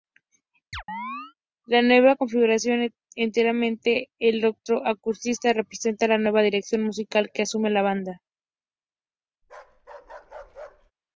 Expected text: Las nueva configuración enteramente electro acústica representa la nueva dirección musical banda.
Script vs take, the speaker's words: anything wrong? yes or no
yes